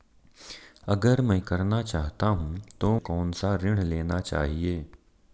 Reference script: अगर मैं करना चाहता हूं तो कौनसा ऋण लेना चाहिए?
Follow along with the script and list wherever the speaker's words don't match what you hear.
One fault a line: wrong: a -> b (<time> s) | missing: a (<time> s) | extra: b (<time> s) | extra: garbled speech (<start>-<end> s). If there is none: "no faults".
no faults